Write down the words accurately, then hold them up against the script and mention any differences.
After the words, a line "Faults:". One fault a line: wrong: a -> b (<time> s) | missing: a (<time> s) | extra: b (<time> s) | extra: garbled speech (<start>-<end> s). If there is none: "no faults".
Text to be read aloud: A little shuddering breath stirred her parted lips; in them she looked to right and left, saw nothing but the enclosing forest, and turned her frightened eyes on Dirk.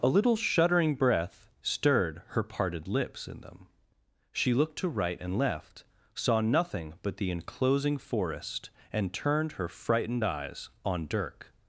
A little shuddering breath stirred her parted lips; in them she looked to right and left, saw nothing but the enclosing forest, and turned her frightened eyes on Dirk.
Faults:
no faults